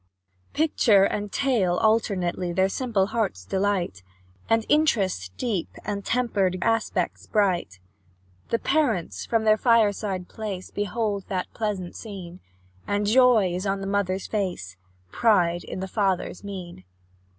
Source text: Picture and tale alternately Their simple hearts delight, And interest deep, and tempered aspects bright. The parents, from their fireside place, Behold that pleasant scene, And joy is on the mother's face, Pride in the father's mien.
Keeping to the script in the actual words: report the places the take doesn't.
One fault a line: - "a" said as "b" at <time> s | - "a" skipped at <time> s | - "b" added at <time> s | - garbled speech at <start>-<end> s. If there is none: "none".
none